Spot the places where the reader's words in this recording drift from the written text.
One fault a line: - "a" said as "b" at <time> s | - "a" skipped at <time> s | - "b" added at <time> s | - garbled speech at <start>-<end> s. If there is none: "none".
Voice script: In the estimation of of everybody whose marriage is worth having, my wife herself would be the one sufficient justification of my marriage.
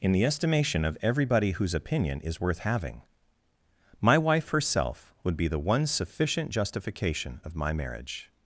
- "of" skipped at 1.0 s
- "marriage" said as "opinion" at 1.8 s